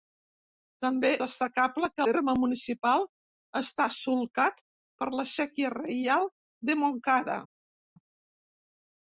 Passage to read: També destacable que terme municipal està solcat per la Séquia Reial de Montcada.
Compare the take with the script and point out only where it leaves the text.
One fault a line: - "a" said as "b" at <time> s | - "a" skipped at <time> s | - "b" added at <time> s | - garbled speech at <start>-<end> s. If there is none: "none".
none